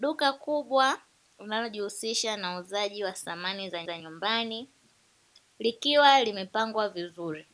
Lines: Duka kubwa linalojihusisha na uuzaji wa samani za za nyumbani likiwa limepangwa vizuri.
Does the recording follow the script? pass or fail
pass